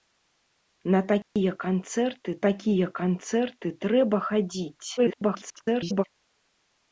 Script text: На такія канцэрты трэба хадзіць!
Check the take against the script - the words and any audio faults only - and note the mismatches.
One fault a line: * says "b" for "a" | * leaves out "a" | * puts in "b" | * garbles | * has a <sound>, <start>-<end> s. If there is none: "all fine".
* has a dropout, 1.2-1.4 s
* puts in "такія канцэрты"
* garbles